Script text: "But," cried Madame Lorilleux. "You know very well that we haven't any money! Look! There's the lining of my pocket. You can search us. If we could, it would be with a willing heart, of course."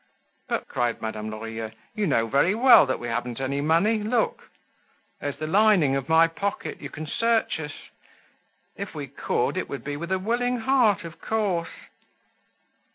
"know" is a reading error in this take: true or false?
false